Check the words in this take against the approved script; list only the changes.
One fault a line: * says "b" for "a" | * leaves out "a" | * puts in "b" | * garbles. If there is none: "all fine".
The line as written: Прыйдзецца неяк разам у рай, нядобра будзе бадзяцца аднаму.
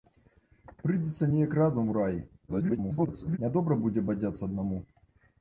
* garbles